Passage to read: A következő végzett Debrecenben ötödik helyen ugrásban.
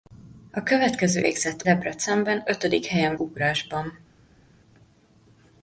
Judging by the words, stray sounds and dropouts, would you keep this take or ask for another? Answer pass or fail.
pass